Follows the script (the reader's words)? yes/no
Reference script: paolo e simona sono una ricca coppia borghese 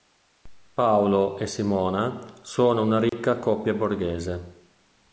yes